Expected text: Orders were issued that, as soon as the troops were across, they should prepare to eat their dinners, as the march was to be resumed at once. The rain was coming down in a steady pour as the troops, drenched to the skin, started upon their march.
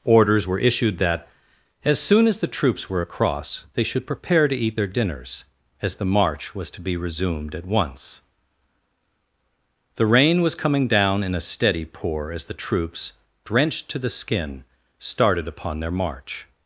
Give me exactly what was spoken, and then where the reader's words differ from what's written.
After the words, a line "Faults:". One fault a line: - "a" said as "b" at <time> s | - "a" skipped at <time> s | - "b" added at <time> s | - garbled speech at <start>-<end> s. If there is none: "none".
Orders were issued that, as soon as the troops were across, they should prepare to eat their dinners, as the march was to be resumed at once. The rain was coming down in a steady pour as the troops, drenched to the skin, started upon their march.
Faults:
none